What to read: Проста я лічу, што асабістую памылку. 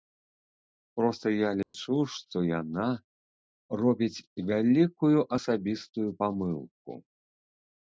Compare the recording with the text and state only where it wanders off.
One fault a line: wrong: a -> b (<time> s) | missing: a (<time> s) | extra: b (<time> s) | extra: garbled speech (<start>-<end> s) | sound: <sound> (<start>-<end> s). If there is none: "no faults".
sound: dropout (1.6-1.7 s)
extra: яна робіць вялікую (2.6 s)